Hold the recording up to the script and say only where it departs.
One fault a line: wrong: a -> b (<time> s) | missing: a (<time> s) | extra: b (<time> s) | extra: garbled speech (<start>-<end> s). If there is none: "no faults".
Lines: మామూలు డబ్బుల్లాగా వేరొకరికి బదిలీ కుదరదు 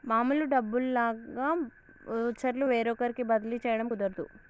extra: వోచర్లు (2.1 s)
extra: చేయడం (3.6 s)